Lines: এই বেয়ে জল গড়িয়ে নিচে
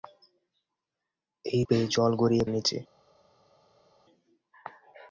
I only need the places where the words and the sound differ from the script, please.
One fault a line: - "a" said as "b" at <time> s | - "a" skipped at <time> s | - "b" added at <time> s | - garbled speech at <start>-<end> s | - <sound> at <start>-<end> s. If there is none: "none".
none